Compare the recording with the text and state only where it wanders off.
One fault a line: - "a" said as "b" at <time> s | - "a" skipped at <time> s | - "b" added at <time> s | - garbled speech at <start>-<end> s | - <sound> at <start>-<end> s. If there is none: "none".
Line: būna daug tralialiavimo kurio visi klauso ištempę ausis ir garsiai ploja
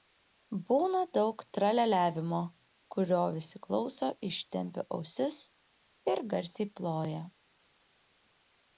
none